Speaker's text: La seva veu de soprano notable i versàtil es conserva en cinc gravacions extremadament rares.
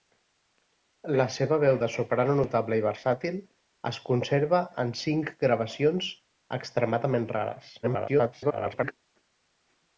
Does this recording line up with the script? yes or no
no